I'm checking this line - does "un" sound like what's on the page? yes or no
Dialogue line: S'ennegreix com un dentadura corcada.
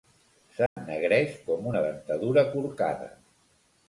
no